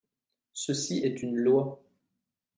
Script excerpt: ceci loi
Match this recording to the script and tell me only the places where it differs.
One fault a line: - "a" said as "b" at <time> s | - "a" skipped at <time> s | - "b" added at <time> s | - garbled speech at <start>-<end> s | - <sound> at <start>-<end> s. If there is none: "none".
- "est une" added at 1.0 s